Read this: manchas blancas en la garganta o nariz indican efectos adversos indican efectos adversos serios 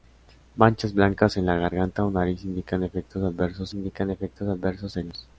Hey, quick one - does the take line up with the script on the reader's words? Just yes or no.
yes